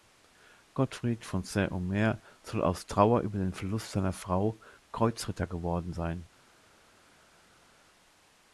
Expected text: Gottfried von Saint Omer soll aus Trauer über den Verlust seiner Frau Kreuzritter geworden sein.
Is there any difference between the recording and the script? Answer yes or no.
no